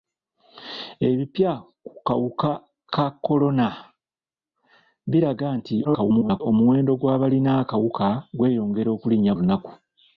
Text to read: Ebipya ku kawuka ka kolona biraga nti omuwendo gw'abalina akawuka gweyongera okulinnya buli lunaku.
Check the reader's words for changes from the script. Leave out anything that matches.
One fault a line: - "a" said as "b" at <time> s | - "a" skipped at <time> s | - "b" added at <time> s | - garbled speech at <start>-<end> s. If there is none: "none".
- garbled speech at 5.8-6.4 s
- "buli" skipped at 9.3 s